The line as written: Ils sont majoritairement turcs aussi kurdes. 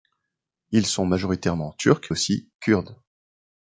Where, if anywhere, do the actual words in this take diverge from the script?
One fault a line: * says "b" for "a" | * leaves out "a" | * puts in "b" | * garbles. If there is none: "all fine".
all fine